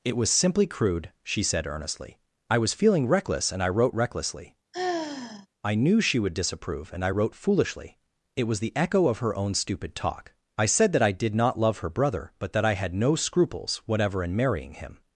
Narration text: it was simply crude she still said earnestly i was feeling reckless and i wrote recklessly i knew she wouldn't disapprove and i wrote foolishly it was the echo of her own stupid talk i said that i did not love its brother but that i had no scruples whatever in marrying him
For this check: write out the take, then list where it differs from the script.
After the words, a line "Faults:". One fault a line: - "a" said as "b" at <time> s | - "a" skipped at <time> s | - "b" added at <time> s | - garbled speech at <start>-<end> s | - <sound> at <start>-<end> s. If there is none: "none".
it was simply crude she said earnestly i was feeling reckless and i wrote recklessly i knew she would disapprove and i wrote foolishly it was the echo of her own stupid talk i said that i did not love her brother but that i had no scruples whatever in marrying him
Faults:
- "still" skipped at 1.4 s
- sigh at 4.7-5.5 s
- "wouldn't" said as "would" at 6.2 s
- "its" said as "her" at 11.8 s